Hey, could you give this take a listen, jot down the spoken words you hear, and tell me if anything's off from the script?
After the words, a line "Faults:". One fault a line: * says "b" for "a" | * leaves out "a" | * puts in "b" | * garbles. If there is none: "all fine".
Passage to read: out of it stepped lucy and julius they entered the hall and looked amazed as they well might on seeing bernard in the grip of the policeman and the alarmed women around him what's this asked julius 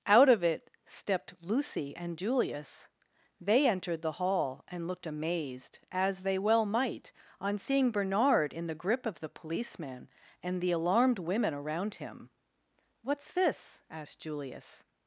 out of it stepped lucy and julius they entered the hall and looked amazed as they well might on seeing bernard in the grip of the policeman and the alarmed women around him what's this asked julius
Faults:
all fine